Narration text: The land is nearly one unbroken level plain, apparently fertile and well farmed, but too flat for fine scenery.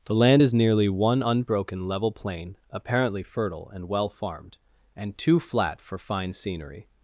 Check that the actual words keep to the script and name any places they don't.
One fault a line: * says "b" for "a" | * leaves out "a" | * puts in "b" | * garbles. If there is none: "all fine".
* says "and" for "but"